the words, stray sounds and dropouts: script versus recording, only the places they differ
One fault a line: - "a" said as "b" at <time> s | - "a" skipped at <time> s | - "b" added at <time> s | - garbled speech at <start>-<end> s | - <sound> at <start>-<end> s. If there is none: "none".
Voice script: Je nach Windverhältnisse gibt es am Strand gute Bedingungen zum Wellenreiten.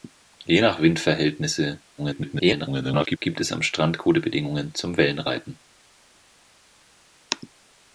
- garbled speech at 2.0-3.2 s